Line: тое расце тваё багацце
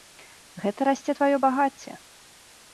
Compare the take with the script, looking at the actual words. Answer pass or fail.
fail